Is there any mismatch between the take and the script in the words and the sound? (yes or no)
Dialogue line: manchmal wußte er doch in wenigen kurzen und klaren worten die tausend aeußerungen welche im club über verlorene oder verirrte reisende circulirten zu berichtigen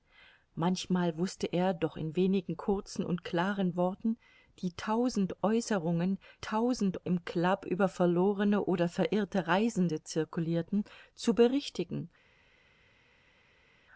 yes